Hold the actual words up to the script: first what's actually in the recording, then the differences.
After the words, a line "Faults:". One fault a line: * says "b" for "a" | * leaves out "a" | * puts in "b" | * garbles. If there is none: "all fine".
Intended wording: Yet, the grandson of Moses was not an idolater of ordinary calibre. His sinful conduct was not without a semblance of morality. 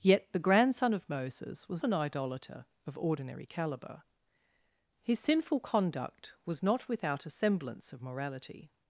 Yet, the grandson of Moses was an idolater of ordinary calibre. His sinful conduct was not without a semblance of morality.
Faults:
* leaves out "not"